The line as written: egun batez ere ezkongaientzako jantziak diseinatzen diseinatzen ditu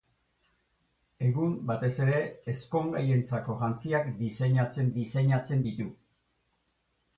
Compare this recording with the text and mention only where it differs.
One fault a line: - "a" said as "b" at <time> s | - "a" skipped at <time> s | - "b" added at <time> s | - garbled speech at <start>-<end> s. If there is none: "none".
none